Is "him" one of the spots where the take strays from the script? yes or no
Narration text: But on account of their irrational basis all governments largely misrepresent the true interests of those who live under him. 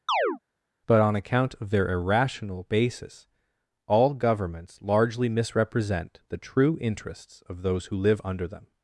yes